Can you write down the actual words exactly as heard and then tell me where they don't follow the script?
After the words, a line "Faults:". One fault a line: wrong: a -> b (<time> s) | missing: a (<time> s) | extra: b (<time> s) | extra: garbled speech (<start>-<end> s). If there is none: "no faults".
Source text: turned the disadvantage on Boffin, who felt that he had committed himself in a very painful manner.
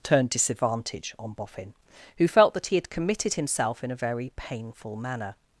turned disadvantage on Boffin, who felt that he had committed himself in a very painful manner.
Faults:
missing: the (0.3 s)